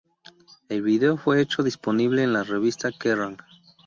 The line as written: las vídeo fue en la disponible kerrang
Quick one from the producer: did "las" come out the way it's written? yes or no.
no